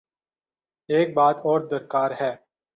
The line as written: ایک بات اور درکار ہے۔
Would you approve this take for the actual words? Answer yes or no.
yes